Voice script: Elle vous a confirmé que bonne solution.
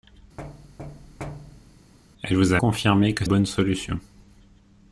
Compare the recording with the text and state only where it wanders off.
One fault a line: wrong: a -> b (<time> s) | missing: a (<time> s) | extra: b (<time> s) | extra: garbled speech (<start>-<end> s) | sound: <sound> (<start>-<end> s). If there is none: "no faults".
sound: thud (0.4-1.9 s)